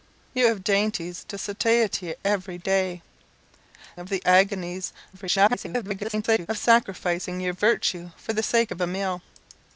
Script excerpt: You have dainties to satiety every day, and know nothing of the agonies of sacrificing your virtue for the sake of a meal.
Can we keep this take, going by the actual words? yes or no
no